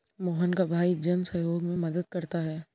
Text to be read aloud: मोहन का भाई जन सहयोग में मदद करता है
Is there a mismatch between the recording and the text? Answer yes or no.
no